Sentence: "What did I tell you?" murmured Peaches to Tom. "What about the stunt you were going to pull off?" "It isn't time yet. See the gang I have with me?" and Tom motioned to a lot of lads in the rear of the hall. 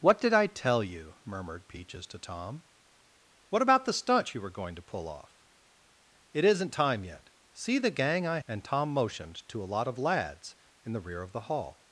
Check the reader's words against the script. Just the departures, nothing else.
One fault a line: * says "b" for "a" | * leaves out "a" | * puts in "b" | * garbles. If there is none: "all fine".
* leaves out "have with me"